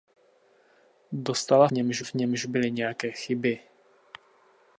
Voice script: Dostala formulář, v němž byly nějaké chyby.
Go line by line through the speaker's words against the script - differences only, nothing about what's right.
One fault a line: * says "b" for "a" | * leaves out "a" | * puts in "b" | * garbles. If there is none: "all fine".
* says "němž" for "formulář"